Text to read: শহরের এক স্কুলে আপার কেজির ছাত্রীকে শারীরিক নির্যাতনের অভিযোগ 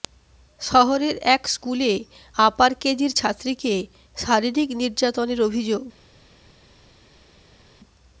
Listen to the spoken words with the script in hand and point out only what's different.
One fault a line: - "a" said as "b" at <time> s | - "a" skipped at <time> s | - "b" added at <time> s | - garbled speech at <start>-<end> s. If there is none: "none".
none